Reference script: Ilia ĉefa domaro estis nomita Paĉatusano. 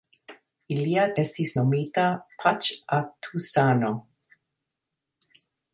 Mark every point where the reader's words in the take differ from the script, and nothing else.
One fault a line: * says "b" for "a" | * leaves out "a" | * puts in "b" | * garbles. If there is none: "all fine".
* leaves out "ĉefa domaro"